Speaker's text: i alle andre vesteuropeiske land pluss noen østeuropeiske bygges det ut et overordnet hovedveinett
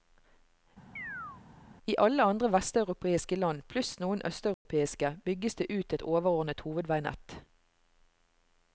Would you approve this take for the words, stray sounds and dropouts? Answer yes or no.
no